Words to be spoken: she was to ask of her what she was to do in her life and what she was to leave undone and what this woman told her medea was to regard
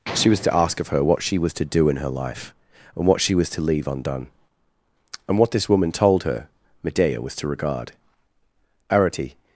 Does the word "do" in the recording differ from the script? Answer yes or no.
no